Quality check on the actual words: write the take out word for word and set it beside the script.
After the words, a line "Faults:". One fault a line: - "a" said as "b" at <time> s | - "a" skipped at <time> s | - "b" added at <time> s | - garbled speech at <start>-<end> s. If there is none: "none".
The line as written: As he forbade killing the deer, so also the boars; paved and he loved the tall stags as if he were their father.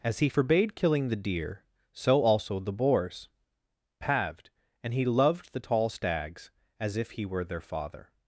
As he forbade killing the deer, so also the boars; paved and he loved the tall stags as if he were their father.
Faults:
none